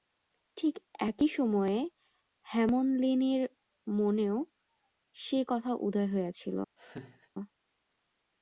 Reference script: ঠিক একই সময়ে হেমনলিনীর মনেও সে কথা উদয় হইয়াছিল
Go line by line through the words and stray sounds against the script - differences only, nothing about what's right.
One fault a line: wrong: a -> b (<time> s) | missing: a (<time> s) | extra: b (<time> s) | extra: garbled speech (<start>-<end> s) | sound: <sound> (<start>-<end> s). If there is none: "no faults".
sound: laugh (6.8-7.3 s)